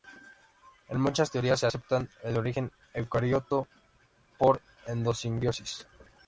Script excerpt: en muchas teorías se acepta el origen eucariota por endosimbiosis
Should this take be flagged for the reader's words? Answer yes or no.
no